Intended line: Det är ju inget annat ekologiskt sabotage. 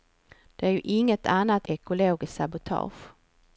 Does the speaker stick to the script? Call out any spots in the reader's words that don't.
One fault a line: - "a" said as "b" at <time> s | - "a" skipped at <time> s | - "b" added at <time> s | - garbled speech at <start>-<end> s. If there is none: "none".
none